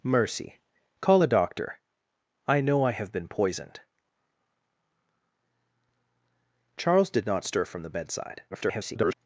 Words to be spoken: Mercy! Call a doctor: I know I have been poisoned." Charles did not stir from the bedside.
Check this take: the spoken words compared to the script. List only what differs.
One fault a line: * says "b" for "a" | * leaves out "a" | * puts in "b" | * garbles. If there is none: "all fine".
* garbles